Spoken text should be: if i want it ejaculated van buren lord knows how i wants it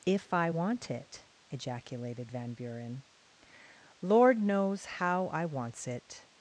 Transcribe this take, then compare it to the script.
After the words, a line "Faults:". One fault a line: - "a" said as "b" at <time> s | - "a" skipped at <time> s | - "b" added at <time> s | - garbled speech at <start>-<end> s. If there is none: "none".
if i want it ejaculated van buren lord knows how i wants it
Faults:
none